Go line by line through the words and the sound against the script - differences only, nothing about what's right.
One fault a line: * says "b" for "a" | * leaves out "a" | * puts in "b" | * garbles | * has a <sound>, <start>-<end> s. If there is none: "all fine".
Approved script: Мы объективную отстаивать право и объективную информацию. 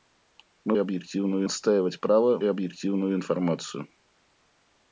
all fine